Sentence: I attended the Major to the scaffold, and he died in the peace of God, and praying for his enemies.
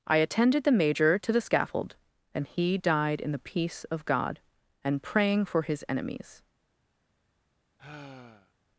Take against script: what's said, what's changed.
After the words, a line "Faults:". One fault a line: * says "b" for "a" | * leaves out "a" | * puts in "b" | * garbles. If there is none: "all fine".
I attended the Major to the scaffold, and he died in the peace of God, and praying for his enemies.
Faults:
all fine